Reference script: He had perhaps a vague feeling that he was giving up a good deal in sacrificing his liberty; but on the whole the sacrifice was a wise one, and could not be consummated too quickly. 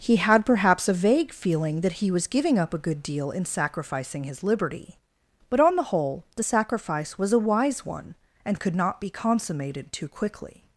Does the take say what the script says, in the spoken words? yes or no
yes